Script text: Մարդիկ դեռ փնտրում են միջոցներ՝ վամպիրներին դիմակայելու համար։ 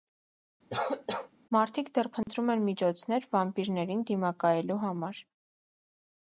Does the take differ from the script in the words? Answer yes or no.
no